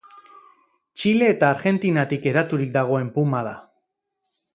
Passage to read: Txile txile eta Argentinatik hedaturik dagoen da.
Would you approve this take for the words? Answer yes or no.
no